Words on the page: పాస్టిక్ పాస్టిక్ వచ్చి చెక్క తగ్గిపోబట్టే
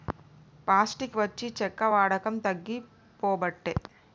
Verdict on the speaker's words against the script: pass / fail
fail